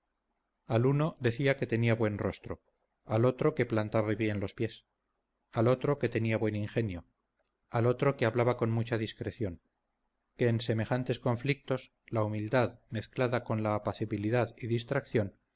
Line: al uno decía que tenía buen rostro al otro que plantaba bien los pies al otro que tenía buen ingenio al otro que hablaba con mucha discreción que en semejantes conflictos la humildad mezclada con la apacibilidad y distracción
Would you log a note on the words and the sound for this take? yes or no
no